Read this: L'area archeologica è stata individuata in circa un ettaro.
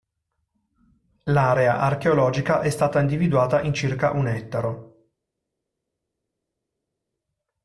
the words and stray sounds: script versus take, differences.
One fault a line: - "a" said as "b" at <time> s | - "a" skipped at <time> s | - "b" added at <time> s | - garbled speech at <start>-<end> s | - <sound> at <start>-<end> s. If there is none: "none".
none